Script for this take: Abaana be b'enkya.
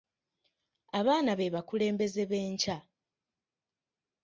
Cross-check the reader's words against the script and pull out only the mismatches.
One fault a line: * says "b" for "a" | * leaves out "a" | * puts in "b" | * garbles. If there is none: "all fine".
* puts in "bakulembeze"